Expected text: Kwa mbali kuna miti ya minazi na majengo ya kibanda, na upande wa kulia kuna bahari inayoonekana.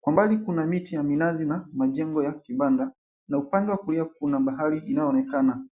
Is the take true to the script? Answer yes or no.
yes